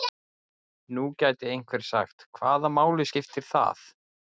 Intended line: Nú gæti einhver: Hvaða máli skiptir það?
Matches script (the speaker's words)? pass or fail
fail